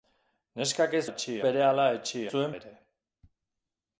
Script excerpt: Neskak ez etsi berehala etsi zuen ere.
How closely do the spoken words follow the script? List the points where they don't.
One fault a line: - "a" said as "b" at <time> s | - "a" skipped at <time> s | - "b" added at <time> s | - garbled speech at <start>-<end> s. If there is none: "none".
none